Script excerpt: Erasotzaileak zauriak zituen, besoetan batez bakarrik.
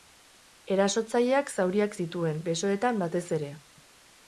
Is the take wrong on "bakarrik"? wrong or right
wrong